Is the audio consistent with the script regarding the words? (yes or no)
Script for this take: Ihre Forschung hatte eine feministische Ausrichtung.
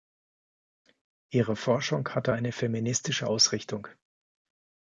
yes